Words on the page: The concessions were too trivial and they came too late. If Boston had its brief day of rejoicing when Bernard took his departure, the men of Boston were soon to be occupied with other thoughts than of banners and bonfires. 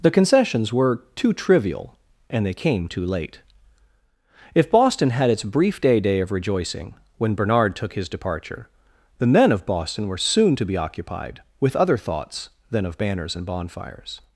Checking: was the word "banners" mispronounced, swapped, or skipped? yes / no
no